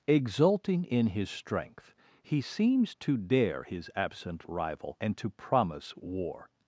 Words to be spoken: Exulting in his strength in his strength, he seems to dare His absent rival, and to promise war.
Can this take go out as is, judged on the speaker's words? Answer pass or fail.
fail